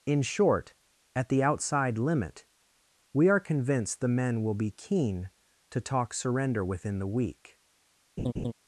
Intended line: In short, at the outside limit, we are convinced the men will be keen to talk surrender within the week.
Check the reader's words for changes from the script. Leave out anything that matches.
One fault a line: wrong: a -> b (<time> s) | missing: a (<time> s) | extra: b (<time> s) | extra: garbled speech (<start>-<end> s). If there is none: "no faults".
no faults